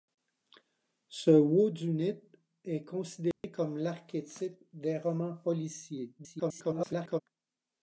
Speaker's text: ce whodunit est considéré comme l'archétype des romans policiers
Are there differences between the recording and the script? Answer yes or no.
yes